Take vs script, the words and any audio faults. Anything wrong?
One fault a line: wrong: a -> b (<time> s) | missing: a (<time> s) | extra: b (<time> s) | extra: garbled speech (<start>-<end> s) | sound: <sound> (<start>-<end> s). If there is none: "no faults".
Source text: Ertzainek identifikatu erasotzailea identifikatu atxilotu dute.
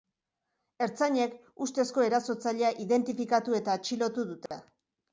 wrong: identifikatu -> ustezko (1.7 s)
extra: eta (3.6 s)
sound: dropout (4.5-4.5 s)